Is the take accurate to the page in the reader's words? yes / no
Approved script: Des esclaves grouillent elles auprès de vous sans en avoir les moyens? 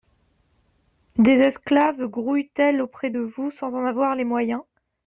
yes